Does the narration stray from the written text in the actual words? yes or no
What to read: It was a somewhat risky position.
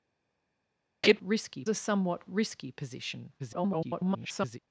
yes